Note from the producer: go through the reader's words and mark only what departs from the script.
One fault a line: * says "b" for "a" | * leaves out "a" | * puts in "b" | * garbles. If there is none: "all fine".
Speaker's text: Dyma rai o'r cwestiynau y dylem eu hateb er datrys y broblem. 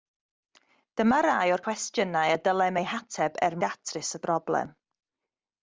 all fine